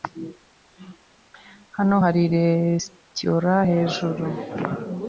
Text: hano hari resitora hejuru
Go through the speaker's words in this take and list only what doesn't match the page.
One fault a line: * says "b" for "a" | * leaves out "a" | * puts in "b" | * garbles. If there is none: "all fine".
all fine